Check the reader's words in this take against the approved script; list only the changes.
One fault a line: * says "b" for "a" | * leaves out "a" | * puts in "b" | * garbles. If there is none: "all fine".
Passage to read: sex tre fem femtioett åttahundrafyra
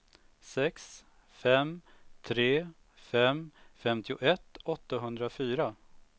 * puts in "fem"